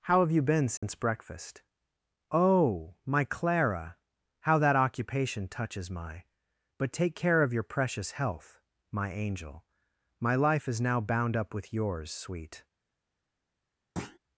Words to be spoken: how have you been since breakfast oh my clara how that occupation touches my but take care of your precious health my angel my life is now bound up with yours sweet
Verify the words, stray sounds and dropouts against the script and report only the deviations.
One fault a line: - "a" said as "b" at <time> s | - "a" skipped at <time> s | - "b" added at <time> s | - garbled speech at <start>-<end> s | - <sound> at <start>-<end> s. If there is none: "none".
- dropout at 0.8-0.8 s
- thud at 14.0-14.2 s